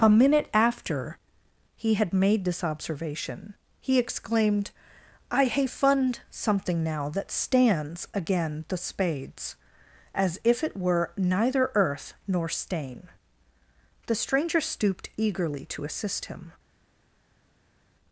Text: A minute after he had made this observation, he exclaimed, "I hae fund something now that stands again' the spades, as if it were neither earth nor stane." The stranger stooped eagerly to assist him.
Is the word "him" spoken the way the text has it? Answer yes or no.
yes